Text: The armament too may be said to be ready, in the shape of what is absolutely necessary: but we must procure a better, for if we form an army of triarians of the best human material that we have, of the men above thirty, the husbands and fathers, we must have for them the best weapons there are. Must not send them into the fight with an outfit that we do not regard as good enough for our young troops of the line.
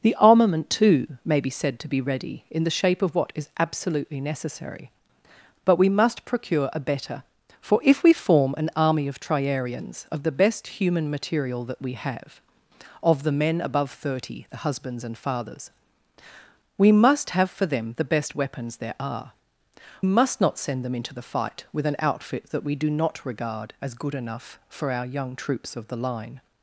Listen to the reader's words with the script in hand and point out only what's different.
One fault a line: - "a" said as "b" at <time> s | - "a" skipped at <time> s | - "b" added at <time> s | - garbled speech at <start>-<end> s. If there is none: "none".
none